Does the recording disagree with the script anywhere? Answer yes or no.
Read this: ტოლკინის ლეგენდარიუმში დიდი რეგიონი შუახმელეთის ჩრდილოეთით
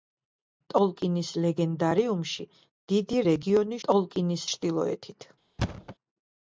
yes